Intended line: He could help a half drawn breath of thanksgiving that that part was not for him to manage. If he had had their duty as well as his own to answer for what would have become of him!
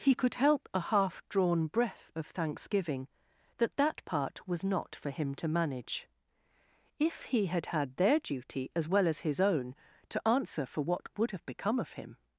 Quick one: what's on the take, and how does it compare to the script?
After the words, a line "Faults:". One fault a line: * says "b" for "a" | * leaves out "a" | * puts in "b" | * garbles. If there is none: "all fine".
He could help a half drawn breath of thanksgiving that that part was not for him to manage. If he had had their duty as well as his own to answer for what would have become of him!
Faults:
all fine